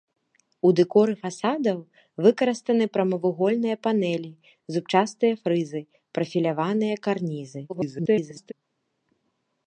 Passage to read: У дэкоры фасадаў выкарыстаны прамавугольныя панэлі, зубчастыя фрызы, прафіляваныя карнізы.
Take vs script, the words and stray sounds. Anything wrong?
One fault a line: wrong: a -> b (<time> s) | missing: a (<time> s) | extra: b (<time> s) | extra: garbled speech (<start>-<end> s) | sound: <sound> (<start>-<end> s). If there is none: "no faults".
extra: garbled speech (7.7-8.5 s)